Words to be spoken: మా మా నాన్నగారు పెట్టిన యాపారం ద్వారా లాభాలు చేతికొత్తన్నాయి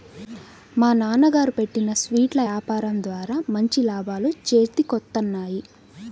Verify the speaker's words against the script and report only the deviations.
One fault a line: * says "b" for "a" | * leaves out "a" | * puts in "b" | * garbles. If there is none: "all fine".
* leaves out "మా"
* puts in "స్వీట్ల"
* puts in "మంచి"